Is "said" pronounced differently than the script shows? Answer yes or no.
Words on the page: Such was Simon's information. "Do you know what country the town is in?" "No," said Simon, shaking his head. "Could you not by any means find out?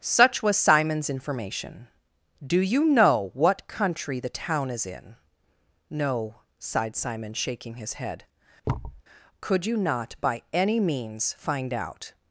yes